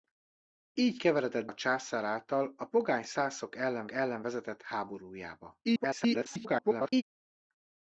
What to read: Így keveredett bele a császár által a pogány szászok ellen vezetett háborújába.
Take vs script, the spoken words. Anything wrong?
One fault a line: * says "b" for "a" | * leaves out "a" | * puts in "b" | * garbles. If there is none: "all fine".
* leaves out "bele"
* puts in "ellen"
* garbles